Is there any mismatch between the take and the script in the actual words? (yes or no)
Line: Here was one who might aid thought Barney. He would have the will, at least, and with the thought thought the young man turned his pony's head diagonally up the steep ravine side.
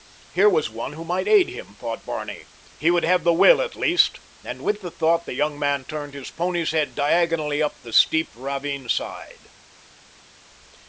yes